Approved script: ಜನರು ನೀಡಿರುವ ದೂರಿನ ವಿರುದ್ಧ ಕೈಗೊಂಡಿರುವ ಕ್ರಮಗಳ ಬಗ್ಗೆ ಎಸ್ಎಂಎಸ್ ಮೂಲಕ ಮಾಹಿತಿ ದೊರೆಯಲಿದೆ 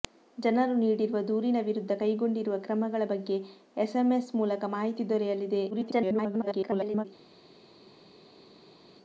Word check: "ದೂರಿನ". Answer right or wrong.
right